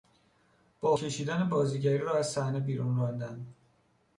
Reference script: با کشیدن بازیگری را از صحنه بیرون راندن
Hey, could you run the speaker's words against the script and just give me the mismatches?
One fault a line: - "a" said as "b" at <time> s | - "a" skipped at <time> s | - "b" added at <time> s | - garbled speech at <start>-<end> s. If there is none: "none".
none